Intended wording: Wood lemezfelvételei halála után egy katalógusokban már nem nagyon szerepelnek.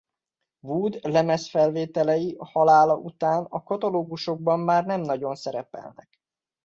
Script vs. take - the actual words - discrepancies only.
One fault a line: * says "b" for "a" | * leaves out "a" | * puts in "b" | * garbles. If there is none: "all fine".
* says "a" for "egy"